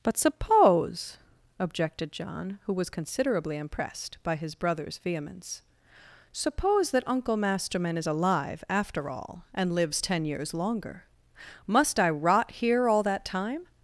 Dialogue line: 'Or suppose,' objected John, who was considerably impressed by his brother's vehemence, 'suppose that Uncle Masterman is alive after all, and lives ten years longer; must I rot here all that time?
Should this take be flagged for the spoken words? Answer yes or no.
yes